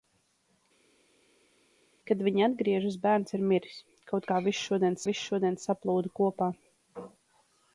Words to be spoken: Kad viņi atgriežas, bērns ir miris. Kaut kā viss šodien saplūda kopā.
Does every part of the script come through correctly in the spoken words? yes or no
no